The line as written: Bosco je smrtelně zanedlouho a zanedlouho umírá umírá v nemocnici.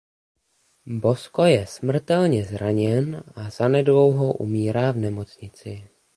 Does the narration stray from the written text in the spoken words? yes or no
yes